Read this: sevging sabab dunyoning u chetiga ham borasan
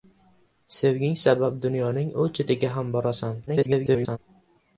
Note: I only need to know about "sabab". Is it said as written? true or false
true